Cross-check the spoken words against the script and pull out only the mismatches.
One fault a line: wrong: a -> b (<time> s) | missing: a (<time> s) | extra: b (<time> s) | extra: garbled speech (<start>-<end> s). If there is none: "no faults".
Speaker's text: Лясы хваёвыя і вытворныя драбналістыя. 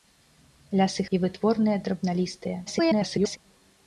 missing: хваёвыя (1.0 s)
extra: garbled speech (2.7-3.4 s)